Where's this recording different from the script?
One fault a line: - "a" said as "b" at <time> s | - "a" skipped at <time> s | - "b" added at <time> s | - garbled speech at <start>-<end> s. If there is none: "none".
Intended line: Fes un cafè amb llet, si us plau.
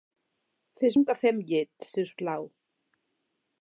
none